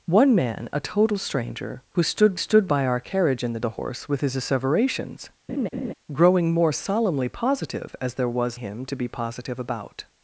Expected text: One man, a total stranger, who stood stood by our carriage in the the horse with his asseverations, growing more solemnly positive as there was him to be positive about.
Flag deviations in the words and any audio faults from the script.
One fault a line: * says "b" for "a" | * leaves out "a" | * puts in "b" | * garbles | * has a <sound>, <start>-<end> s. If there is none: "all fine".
* has a laugh, 5.5-5.9 s